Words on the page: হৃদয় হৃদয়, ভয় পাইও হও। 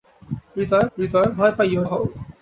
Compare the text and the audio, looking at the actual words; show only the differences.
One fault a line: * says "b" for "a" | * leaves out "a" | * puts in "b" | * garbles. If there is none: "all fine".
all fine